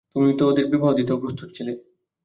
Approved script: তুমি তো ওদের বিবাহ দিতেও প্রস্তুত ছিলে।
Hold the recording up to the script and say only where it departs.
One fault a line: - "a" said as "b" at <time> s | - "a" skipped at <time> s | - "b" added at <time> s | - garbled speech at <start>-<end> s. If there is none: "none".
none